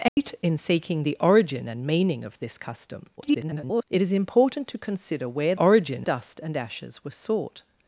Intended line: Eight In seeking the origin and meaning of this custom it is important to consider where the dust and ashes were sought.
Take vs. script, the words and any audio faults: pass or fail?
fail